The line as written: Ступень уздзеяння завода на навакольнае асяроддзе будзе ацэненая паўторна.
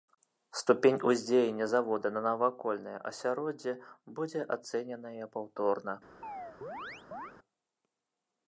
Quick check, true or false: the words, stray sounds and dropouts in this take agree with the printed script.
false